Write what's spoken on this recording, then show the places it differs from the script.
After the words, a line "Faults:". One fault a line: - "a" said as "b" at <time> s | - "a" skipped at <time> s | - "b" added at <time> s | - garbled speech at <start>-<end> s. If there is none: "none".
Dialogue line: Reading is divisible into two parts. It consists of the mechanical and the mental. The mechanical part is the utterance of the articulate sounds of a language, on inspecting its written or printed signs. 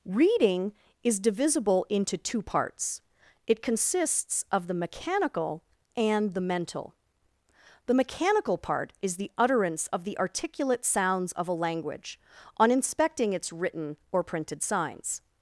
Reading is divisible into two parts. It consists of the mechanical and the mental. The mechanical part is the utterance of the articulate sounds of a language, on inspecting its written or printed signs.
Faults:
none